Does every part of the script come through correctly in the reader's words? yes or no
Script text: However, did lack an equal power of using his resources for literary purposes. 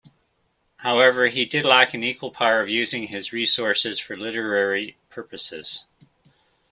no